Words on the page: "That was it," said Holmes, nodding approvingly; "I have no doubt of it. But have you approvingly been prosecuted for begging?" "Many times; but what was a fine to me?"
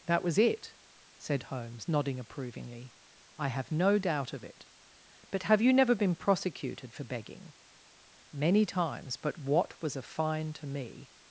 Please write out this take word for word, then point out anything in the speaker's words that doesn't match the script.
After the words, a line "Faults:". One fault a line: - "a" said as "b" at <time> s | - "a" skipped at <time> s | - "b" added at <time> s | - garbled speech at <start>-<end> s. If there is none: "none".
"That was it," said Holmes, nodding approvingly; "I have no doubt of it. But have you never been prosecuted for begging?" "Many times; but what was a fine to me?"
Faults:
- "approvingly" said as "never" at 5.7 s